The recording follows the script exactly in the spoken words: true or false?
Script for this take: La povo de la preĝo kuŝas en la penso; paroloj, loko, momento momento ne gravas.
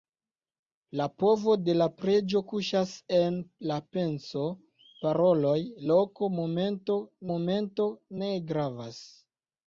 true